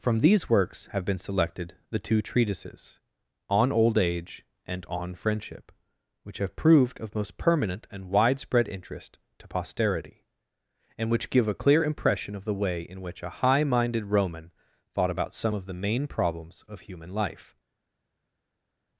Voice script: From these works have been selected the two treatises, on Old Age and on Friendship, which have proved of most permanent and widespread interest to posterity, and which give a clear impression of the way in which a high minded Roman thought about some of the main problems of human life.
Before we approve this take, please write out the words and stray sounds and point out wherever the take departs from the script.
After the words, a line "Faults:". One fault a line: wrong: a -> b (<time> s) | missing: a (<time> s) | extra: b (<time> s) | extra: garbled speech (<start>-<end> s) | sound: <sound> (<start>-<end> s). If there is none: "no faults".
From these works have been selected the two treatises, on Old Age and on Friendship, which have proved of most permanent and widespread interest to posterity, and which give a clear impression of the way in which a high minded Roman thought about some of the main problems of human life.
Faults:
no faults